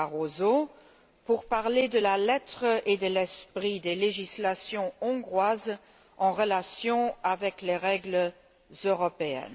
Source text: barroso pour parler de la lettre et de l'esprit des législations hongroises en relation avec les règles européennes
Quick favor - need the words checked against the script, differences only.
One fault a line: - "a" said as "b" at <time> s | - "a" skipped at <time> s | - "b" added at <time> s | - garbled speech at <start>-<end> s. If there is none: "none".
none